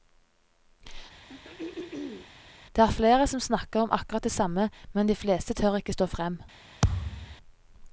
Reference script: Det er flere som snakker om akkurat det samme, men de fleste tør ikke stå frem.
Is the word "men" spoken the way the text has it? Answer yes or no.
yes